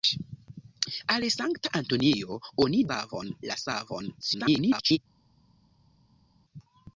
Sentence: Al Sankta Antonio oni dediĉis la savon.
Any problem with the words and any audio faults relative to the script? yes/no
yes